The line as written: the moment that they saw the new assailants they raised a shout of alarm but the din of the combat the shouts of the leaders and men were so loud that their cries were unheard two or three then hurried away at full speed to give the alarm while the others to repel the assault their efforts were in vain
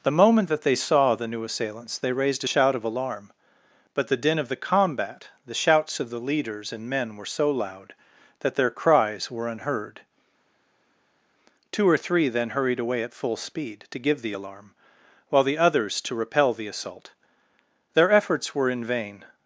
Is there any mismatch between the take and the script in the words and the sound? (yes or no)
no